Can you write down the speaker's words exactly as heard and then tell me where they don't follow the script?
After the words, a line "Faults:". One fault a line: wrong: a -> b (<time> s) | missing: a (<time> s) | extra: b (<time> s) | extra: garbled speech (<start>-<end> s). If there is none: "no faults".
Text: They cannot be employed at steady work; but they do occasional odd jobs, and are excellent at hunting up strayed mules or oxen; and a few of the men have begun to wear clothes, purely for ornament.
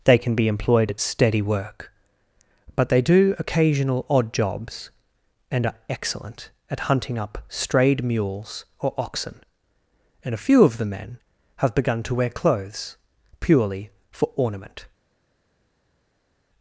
They can be employed at steady work; but they do occasional odd jobs, and are excellent at hunting up strayed mules or oxen; and a few of the men have begun to wear clothes, purely for ornament.
Faults:
wrong: cannot -> can (0.2 s)